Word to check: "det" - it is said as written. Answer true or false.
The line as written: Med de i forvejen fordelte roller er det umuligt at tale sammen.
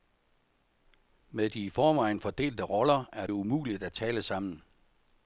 false